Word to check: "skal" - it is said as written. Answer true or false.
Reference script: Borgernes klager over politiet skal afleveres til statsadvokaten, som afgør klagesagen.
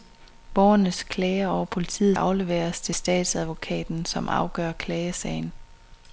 false